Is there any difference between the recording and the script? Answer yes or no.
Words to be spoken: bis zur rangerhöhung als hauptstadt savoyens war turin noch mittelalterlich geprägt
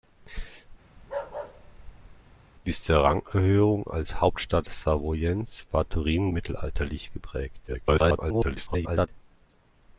yes